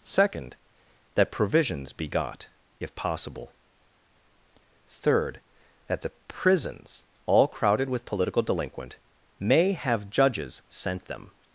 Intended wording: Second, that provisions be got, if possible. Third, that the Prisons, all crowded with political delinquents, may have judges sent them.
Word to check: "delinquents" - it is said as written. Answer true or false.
false